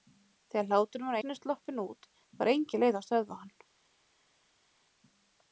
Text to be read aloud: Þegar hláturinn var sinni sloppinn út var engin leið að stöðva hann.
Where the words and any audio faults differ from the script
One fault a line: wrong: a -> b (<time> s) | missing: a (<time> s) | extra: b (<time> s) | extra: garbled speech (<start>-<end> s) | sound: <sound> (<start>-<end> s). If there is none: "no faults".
no faults